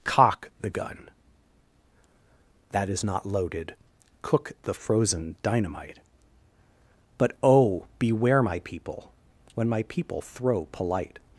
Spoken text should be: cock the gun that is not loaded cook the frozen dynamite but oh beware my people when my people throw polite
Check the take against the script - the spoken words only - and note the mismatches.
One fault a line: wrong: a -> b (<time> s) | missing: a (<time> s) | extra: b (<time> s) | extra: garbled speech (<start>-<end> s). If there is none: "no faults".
no faults